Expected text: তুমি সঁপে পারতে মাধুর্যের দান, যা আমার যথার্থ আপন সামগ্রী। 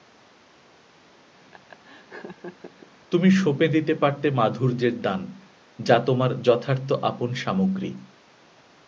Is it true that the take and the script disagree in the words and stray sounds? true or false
true